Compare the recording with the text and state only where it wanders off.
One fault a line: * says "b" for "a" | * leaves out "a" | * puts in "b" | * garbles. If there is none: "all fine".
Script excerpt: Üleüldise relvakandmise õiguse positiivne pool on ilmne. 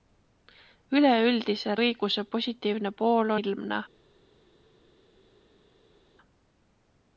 * leaves out "relvakandmise"
* leaves out "on"